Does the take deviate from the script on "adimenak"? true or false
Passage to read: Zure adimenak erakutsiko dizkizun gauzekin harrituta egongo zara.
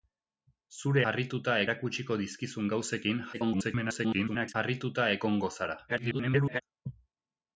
true